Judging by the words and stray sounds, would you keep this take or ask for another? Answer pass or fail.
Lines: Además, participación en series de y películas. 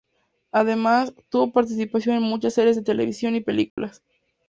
fail